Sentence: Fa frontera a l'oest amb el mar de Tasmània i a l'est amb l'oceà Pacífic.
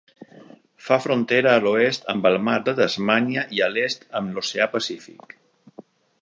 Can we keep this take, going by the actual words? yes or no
yes